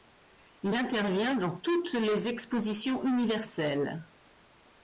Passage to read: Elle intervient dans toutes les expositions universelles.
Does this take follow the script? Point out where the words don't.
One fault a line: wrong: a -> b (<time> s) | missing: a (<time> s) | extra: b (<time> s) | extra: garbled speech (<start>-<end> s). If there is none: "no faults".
wrong: Elle -> Il (0.6 s)